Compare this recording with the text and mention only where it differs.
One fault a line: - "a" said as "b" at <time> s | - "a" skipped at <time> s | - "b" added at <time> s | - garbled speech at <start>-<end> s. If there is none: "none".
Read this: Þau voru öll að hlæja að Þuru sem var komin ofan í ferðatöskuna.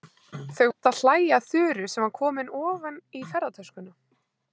- "voru" skipped at 0.7 s